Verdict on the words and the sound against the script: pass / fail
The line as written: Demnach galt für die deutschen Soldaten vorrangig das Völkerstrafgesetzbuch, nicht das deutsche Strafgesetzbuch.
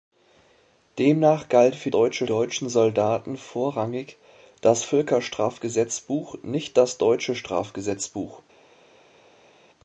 fail